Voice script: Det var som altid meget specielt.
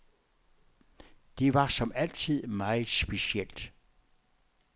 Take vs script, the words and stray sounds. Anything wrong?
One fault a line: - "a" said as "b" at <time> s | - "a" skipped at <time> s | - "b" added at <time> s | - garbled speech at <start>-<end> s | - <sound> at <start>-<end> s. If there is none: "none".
none